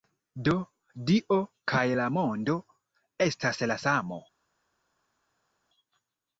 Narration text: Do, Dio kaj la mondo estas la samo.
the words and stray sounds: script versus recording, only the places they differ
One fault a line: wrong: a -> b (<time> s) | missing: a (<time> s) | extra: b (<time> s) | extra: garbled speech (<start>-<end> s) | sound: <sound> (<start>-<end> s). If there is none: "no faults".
no faults